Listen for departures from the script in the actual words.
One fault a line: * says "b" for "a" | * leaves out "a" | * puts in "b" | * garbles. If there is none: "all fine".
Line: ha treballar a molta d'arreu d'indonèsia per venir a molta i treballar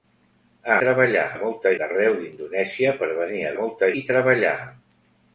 all fine